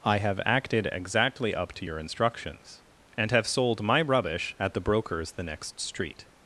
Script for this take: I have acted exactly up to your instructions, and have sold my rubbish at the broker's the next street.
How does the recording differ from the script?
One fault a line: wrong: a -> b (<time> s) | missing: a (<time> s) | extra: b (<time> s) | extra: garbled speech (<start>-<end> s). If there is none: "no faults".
no faults